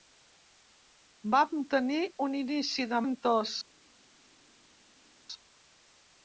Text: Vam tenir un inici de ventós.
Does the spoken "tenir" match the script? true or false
true